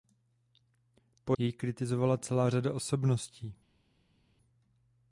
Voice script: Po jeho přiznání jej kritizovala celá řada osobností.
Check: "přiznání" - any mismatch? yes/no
yes